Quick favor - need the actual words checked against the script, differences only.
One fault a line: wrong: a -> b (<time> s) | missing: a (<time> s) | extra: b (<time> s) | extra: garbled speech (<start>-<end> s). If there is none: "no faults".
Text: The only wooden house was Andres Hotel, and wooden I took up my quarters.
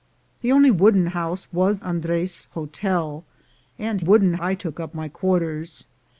no faults